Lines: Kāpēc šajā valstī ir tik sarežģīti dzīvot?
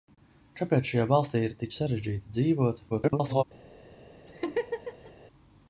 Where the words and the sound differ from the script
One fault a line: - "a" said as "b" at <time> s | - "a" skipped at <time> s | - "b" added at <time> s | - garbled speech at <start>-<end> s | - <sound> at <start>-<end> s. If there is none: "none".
- garbled speech at 2.9-3.4 s
- laugh at 4.3-5.1 s